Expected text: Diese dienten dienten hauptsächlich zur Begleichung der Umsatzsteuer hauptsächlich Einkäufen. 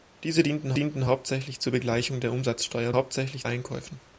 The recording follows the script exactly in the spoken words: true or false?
true